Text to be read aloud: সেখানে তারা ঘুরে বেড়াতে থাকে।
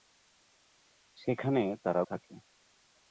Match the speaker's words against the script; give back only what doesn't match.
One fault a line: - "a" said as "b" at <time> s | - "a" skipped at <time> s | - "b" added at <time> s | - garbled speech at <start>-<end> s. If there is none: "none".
- "ঘুরে বেড়াতে" skipped at 2.0 s